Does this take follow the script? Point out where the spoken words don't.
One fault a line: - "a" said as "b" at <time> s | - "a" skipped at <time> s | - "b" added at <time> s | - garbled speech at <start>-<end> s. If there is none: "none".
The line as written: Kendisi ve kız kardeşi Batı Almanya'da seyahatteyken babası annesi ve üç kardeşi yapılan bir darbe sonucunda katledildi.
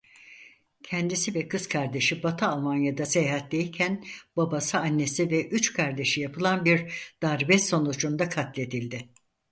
none